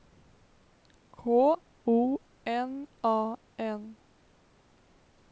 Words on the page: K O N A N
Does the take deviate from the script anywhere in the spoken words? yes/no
no